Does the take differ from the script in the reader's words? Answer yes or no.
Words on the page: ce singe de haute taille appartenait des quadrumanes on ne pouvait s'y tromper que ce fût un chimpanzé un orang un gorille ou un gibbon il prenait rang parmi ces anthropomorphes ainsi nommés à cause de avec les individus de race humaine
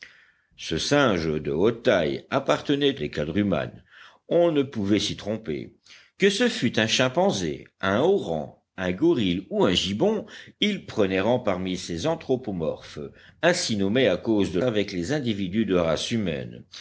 no